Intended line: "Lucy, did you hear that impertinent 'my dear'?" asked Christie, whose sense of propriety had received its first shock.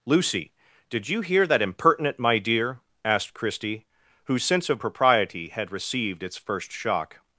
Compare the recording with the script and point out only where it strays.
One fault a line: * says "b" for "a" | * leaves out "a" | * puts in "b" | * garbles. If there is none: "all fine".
all fine